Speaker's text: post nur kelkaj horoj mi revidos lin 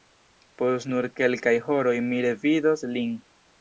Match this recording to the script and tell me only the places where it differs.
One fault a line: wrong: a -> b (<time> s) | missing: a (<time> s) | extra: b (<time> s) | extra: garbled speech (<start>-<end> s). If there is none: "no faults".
no faults